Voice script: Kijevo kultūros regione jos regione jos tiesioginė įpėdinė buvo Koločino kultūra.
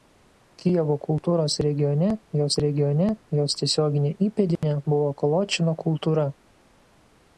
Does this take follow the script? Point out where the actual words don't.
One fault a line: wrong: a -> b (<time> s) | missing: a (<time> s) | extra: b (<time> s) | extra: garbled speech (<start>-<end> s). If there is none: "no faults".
no faults